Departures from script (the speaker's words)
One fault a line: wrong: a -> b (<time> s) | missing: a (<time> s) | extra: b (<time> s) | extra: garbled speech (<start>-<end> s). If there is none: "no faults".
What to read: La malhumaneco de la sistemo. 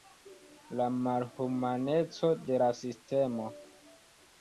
no faults